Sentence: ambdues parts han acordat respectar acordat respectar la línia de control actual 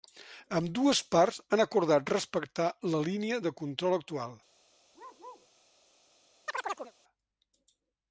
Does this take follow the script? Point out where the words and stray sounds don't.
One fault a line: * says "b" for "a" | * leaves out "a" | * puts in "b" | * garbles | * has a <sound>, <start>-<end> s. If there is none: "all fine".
* leaves out "acordat respectar"
* has a bark, 4.9-5.5 s
* has a chirp, 6.5-6.9 s